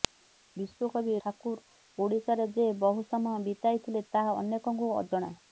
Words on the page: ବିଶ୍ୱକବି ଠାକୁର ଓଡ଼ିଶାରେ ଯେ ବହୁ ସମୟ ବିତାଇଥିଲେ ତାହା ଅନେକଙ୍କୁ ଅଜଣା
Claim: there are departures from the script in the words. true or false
false